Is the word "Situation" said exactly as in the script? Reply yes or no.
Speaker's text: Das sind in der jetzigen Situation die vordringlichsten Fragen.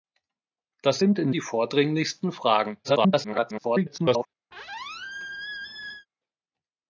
no